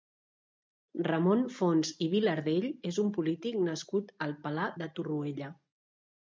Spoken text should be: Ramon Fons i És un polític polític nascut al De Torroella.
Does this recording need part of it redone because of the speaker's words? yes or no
yes